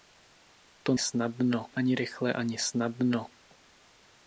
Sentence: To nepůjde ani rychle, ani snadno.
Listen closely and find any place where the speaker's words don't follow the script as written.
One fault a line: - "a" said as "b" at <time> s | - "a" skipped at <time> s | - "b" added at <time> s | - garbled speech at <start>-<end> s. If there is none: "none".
- "nepůjde" said as "snadno" at 1.0 s